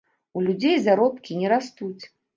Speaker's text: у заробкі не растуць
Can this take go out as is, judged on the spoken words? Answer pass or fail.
fail